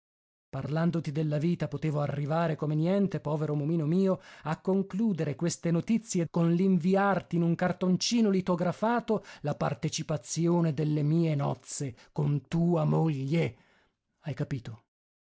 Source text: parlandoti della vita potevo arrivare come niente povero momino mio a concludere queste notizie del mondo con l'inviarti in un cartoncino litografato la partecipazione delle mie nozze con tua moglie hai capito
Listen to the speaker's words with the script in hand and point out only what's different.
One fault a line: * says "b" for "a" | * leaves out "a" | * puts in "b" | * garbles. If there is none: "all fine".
* leaves out "del mondo"